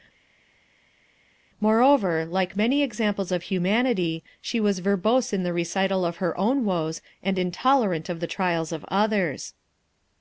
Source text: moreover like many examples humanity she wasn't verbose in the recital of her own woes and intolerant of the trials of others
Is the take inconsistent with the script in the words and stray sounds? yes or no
yes